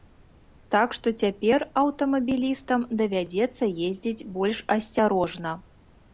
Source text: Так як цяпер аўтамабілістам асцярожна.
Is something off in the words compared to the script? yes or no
yes